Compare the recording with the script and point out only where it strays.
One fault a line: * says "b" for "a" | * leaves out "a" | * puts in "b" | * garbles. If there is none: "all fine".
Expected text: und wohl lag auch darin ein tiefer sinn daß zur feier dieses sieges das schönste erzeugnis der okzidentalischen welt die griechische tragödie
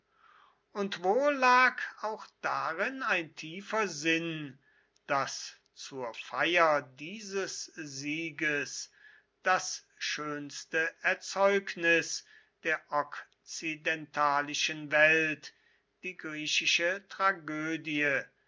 all fine